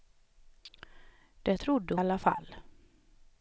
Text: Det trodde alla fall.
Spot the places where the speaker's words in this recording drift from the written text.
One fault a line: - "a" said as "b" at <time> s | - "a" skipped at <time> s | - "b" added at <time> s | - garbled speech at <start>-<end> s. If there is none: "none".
none